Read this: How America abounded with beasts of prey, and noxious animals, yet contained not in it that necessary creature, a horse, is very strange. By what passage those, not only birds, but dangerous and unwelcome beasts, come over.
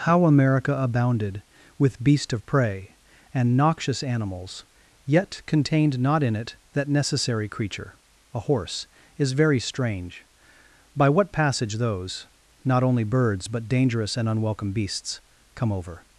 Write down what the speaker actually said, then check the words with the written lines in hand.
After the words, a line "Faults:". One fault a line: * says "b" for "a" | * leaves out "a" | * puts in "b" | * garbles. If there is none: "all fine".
How America abounded with beast of prey, and noxious animals, yet contained not in it that necessary creature, a horse, is very strange. By what passage those, not only birds, but dangerous and unwelcome beasts, come over.
Faults:
* says "beast" for "beasts"